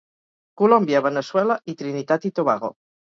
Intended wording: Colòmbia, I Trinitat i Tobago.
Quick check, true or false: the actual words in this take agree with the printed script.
false